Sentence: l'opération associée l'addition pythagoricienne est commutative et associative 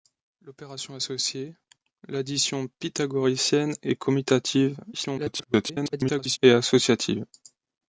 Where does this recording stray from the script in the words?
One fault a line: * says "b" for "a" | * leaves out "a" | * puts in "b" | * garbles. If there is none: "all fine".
* garbles